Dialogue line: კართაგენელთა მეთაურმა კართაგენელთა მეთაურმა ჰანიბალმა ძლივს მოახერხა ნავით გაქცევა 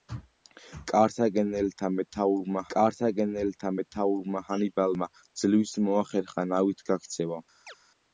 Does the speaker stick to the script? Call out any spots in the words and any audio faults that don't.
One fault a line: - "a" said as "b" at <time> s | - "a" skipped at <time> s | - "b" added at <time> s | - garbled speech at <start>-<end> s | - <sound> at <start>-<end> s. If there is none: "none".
- chirp at 7.7-7.8 s